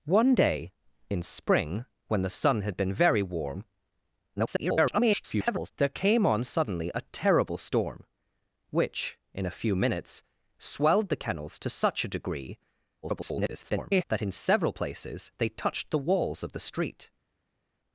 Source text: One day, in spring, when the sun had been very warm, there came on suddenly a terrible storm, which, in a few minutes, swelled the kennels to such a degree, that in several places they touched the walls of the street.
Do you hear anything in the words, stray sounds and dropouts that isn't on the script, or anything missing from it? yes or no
yes